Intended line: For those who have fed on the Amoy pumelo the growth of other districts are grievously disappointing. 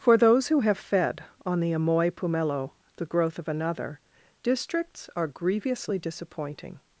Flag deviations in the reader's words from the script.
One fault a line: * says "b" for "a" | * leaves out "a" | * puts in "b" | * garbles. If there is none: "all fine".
* says "another" for "other"